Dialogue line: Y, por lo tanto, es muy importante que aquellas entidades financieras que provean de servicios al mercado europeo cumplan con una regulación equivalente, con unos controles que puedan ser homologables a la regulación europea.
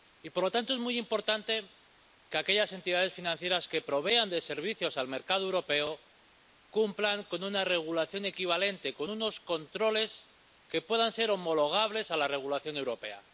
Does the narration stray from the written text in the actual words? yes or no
no